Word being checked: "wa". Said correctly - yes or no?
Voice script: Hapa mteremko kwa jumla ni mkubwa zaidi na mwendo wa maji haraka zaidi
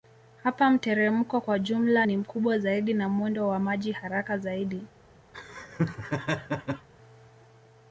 yes